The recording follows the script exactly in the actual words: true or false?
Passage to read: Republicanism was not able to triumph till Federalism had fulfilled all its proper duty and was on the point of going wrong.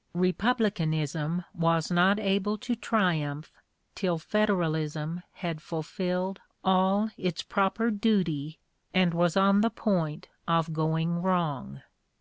true